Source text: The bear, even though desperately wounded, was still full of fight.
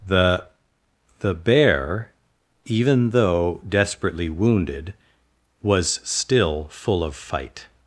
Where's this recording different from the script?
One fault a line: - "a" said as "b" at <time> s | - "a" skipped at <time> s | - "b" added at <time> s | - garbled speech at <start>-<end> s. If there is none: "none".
- "the" added at 1.2 s